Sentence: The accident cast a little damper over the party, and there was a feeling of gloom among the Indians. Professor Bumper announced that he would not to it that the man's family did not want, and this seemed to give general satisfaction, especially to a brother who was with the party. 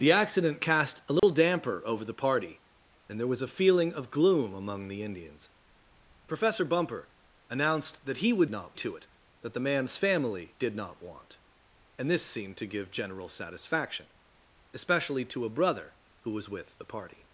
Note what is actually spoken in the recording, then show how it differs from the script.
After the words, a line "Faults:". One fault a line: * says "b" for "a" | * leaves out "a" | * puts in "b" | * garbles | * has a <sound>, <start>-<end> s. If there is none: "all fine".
The accident cast a little damper over the party, and there was a feeling of gloom among the Indians. Professor Bumper announced that he would not to it that the man's family did not want, and this seemed to give general satisfaction, especially to a brother who was with the party.
Faults:
* has a dropout, 1.2-1.2 s